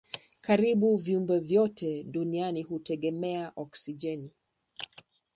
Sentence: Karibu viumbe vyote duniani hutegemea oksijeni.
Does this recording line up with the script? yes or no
yes